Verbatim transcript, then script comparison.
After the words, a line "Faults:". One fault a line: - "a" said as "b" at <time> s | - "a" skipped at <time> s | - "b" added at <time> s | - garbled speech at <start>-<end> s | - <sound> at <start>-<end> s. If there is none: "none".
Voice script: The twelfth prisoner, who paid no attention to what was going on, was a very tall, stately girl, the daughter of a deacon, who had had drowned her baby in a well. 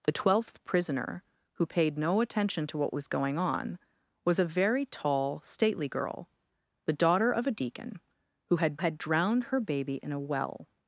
The twelfth prisoner, who paid no attention to what was going on, was a very tall, stately girl, the daughter of a deacon, who had had drowned her baby in a well.
Faults:
none